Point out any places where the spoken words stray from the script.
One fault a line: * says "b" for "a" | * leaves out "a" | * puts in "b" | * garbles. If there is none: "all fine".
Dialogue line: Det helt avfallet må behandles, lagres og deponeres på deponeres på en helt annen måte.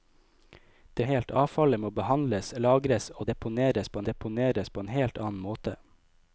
all fine